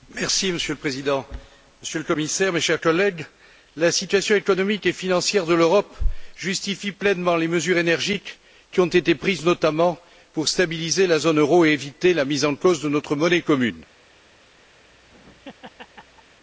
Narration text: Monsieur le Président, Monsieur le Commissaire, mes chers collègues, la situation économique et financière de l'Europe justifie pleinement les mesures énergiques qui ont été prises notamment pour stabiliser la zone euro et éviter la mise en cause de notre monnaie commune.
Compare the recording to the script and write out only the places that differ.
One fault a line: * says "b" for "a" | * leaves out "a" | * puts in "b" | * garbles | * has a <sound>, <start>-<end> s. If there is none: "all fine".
* has a laugh, 14.8-16.4 s